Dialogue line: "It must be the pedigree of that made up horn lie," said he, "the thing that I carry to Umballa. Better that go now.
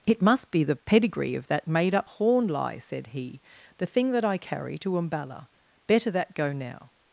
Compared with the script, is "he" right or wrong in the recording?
right